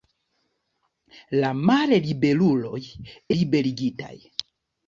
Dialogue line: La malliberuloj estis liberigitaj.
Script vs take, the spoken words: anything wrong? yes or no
yes